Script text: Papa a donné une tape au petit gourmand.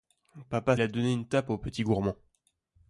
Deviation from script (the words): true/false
false